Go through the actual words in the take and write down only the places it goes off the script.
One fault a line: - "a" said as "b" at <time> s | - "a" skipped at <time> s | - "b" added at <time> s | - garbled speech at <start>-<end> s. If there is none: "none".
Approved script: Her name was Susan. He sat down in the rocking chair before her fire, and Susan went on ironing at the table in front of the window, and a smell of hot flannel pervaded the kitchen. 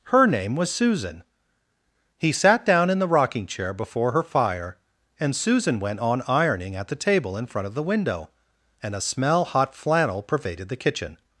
- "of" skipped at 9.4 s